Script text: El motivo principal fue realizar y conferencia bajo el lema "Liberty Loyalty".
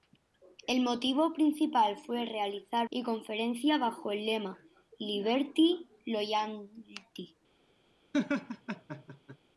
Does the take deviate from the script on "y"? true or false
false